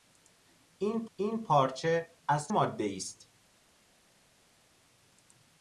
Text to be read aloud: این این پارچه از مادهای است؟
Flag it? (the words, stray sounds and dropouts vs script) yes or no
no